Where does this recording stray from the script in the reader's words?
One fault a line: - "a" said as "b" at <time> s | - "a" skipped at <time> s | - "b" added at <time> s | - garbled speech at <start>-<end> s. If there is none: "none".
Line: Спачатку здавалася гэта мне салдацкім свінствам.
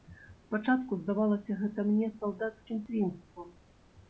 none